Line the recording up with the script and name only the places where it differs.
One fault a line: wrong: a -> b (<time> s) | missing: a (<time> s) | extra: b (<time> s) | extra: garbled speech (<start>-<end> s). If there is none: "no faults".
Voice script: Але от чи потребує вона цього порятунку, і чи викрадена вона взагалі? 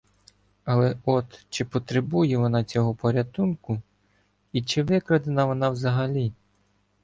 no faults